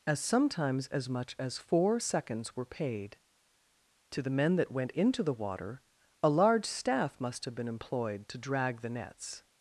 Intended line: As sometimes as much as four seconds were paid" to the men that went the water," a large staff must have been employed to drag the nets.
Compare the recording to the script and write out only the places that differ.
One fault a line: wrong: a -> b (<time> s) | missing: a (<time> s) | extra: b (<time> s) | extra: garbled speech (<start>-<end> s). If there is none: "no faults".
extra: into (4.9 s)